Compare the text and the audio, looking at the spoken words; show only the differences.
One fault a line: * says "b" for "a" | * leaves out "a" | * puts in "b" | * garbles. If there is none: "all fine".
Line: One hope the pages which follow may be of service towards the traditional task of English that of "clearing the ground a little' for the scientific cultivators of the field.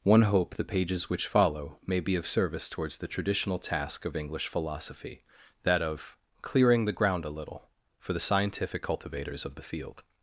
* puts in "philosophy"